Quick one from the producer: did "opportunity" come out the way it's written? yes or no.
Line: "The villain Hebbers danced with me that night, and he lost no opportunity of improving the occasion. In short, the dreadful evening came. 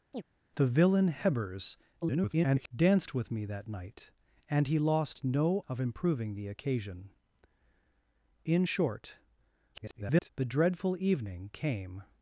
no